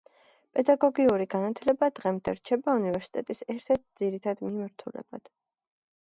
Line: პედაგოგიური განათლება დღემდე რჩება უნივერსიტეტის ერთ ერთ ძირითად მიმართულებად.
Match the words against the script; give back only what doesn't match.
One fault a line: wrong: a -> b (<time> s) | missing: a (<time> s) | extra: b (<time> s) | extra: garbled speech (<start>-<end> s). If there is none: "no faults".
no faults